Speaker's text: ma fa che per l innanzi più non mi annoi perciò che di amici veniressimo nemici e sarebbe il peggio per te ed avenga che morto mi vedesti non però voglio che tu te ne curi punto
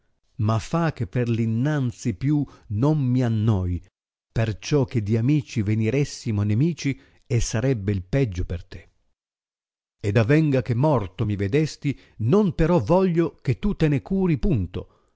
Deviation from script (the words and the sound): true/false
false